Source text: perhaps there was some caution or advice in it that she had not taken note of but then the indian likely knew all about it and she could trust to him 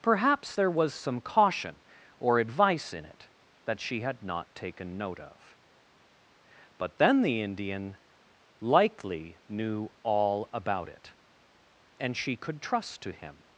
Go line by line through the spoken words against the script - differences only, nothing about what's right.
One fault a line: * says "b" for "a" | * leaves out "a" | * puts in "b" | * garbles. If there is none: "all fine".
all fine